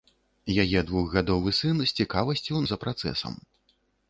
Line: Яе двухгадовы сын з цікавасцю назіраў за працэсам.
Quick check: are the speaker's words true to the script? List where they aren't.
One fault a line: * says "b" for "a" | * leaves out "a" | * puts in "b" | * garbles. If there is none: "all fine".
* leaves out "назіраў"